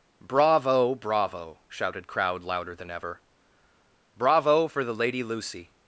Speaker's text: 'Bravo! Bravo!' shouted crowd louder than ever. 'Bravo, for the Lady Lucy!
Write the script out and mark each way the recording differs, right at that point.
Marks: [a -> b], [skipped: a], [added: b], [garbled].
'Bravo! Bravo!' shouted crowd louder than ever. 'Bravo, for the Lady Lucy!